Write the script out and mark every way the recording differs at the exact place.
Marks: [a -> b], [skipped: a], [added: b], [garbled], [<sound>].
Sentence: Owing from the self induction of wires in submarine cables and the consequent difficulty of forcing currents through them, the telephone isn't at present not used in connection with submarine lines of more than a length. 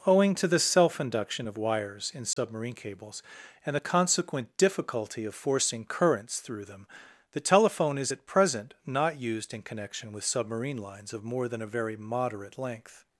Owing [from -> to] the self induction of wires in submarine [dropout] cables and the consequent difficulty of forcing currents through them, the telephone [isn't -> is] at present not used in connection with submarine lines of more than a [added: very moderate] length.